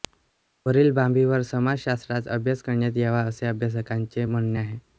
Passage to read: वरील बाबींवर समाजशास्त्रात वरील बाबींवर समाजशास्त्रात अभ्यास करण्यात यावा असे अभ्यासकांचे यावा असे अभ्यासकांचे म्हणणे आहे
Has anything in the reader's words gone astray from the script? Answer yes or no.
yes